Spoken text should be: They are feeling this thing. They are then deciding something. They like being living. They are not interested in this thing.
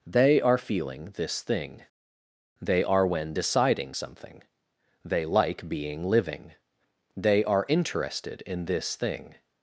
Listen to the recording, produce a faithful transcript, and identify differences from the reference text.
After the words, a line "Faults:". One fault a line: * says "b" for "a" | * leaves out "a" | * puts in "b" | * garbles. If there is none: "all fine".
They are feeling this thing. They are when deciding something. They like being living. They are interested in this thing.
Faults:
* says "when" for "then"
* leaves out "not"